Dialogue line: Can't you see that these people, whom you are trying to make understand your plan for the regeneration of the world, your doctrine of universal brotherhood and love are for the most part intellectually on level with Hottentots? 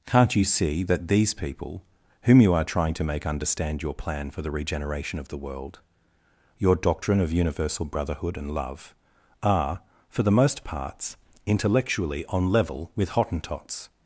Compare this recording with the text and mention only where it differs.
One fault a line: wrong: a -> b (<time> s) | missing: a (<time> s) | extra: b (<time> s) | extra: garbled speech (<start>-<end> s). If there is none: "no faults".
wrong: part -> parts (10.6 s)